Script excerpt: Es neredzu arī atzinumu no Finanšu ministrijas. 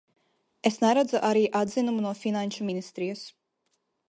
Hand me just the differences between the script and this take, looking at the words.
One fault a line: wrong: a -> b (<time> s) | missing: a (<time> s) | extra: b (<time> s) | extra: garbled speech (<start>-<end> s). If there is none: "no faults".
no faults